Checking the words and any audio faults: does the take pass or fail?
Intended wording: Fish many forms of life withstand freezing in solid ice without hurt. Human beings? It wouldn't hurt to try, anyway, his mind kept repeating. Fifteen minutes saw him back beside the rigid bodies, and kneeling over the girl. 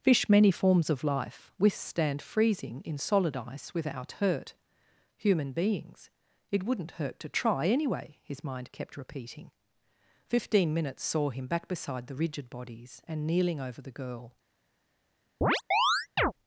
fail